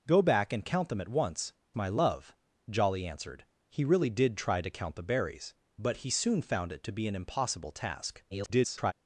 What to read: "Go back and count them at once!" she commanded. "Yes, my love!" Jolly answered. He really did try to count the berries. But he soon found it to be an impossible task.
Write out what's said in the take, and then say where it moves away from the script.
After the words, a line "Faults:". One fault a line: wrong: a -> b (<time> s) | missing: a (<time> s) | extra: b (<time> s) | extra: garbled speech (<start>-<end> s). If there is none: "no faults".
"Go back and count them at once!" my love!" Jolly answered. He really did try to count the berries. But he soon found it to be an impossible task. [garbled]
Faults:
missing: she commanded Yes (1.5 s)
extra: garbled speech (8.3-8.9 s)